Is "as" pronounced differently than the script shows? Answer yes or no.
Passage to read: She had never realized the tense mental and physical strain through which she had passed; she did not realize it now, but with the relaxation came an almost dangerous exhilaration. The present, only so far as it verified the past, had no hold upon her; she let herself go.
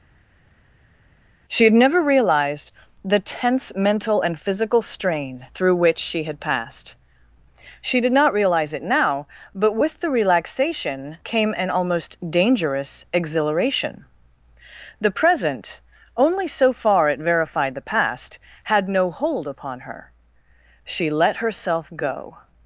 yes